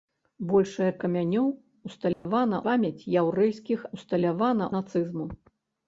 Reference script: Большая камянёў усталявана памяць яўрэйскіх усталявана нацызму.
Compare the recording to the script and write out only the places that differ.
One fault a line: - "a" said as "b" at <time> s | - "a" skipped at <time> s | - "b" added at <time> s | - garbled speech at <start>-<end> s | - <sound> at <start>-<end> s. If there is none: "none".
- dropout at 2.1-2.3 s